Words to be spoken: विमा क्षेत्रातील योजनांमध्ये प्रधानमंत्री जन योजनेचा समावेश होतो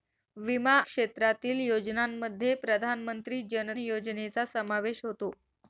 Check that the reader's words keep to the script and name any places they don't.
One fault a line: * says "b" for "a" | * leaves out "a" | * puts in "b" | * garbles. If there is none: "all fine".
all fine